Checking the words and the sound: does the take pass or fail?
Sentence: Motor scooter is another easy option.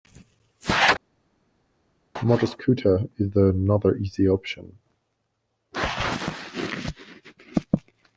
pass